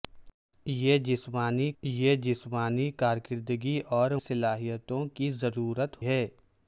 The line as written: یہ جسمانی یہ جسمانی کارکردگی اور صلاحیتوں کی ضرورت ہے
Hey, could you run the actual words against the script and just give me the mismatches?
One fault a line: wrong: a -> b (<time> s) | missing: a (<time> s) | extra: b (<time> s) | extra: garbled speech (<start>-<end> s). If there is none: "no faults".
no faults